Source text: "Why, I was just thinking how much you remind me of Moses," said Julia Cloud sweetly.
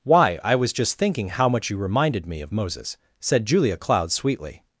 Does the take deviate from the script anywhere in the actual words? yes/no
yes